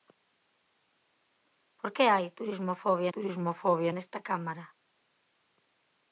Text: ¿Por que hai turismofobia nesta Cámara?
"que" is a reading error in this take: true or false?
false